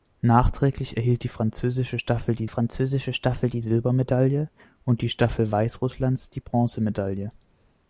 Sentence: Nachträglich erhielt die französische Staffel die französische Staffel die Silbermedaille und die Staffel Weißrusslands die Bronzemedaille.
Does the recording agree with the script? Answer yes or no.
yes